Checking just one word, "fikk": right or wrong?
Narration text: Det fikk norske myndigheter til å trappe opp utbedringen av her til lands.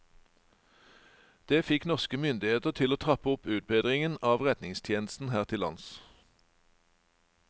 right